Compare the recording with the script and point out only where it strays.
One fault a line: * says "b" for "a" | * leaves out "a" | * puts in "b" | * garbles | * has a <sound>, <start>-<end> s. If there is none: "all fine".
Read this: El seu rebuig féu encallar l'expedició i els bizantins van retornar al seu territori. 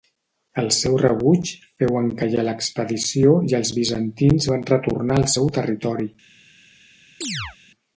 * has a chirp, 7.2-7.6 s